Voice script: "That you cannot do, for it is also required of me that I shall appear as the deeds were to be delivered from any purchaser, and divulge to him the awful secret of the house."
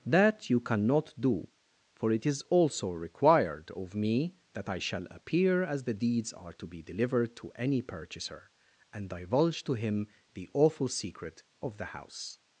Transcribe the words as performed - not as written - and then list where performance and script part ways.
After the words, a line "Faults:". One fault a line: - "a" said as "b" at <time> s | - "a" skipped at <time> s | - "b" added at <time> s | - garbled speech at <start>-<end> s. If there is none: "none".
"That you cannot do, for it is also required of me that I shall appear as the deeds are to be delivered to any purchaser, and divulge to him the awful secret of the house."
Faults:
- "were" said as "are" at 6.3 s
- "from" said as "to" at 7.3 s